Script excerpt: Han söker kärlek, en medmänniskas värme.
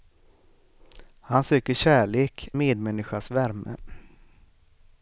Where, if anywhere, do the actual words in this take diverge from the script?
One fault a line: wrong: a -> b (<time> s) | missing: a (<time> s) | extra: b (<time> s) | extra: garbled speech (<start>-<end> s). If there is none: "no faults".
missing: en (2.5 s)